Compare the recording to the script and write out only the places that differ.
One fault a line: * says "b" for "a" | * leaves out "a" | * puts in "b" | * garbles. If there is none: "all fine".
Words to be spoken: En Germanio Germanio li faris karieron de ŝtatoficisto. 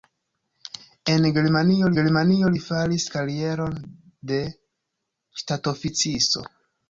all fine